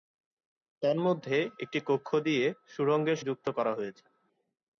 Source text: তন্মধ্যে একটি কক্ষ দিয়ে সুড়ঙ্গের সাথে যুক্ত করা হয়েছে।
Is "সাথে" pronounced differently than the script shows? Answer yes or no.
yes